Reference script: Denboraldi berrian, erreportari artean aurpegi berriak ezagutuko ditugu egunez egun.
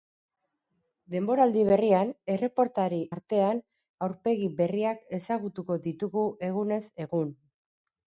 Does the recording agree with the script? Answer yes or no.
yes